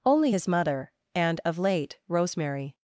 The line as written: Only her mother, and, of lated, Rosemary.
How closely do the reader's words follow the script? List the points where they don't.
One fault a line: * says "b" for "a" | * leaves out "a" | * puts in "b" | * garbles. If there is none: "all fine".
* says "his" for "her"
* says "late" for "lated"